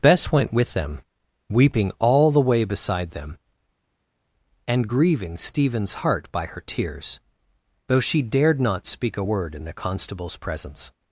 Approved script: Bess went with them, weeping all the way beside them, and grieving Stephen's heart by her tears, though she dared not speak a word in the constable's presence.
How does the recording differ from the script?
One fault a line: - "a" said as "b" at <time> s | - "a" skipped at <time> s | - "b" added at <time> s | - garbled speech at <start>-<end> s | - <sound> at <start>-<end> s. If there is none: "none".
none